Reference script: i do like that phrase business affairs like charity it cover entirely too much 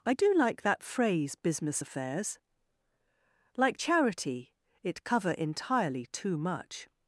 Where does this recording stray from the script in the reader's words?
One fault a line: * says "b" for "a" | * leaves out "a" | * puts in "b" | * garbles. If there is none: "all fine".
all fine